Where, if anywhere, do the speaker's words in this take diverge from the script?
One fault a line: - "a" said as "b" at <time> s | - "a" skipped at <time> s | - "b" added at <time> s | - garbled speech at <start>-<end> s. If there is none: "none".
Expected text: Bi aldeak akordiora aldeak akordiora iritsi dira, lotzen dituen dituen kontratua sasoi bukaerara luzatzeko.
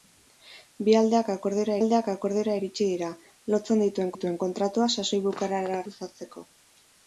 none